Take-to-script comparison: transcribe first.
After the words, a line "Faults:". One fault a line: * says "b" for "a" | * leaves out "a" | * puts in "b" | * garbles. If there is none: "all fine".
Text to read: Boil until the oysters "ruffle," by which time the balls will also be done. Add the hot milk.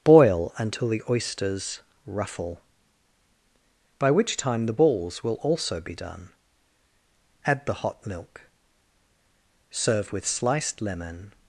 Boil until the oysters "ruffle," by which time the balls will also be done. Add the hot milk. Serve with sliced lemon
Faults:
* puts in "Serve with sliced lemon"